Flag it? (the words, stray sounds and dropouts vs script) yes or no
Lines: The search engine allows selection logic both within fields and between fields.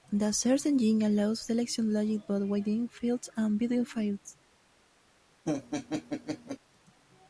yes